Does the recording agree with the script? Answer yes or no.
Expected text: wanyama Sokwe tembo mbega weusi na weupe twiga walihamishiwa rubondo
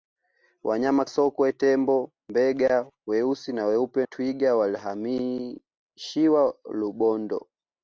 yes